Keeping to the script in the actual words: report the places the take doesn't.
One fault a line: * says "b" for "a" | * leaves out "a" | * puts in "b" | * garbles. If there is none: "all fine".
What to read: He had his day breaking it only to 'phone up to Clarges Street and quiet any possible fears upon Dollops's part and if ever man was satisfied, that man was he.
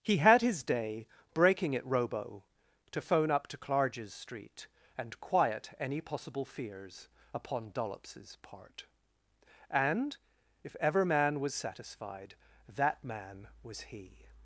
* says "robo" for "only"